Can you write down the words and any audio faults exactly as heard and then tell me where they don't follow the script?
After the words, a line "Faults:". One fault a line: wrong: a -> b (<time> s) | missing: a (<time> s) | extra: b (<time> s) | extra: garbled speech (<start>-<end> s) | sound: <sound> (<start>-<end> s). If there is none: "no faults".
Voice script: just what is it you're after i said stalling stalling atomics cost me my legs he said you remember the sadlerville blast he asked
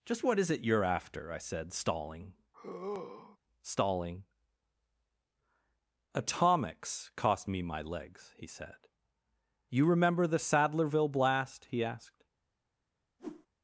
just what is it you're after i said stalling stalling atomics cost me my legs he said you remember the sadlerville blast he asked
Faults:
sound: sigh (2.5-3.4 s)
sound: whoosh (13.2-13.5 s)